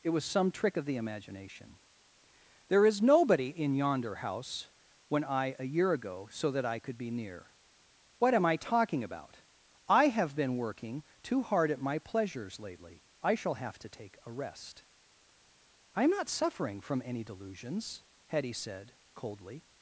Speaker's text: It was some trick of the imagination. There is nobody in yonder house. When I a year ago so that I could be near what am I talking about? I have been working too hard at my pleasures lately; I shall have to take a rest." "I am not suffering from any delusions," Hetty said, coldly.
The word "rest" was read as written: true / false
true